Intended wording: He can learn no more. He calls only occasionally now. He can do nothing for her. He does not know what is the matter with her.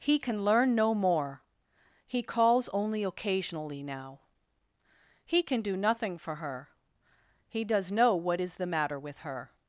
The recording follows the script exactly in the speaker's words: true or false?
false